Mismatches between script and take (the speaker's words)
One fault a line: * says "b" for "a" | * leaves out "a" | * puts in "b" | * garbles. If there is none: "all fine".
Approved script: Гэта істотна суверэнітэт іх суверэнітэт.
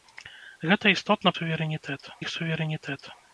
all fine